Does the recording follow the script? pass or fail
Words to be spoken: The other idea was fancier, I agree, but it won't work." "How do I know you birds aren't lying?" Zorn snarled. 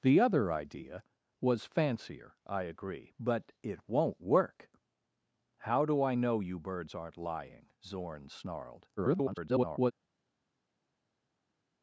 fail